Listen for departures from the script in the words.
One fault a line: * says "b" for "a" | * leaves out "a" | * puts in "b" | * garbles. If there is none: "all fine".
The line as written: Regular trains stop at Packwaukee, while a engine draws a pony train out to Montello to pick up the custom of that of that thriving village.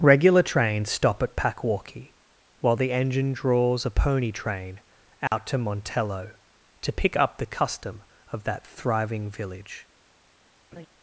* says "the" for "a"
* leaves out "of that"